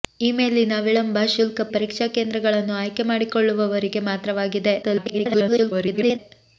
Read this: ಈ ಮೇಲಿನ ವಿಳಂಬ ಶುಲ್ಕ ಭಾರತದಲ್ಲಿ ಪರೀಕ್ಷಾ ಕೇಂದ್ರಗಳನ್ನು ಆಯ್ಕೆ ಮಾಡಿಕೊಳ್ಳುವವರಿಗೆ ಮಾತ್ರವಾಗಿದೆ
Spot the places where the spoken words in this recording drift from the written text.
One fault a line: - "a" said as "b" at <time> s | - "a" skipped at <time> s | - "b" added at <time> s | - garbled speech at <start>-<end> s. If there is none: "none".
- "ಭಾರತದಲ್ಲಿ" skipped at 1.6 s
- garbled speech at 4.8-6.2 s